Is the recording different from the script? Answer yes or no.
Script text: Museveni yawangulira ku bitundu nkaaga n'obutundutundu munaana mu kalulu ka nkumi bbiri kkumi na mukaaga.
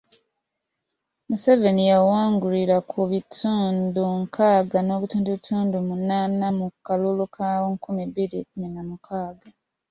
no